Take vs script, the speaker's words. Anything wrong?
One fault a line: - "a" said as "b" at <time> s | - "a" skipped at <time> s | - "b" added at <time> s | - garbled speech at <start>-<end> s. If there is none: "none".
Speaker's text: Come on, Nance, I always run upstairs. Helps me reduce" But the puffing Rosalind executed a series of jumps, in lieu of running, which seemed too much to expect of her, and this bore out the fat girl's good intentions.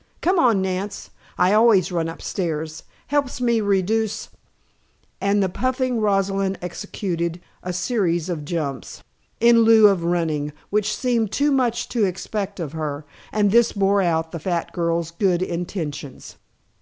- "But" said as "And" at 5.2 s